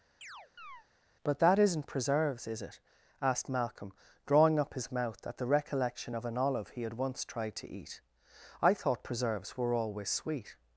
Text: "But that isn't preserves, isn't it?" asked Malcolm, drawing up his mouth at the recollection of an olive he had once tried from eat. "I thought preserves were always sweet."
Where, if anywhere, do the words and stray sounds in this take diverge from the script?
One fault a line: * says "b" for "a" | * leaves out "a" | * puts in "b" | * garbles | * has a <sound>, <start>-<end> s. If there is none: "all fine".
* has a chirp, 0.2-0.9 s
* says "is" for "isn't"
* says "to" for "from"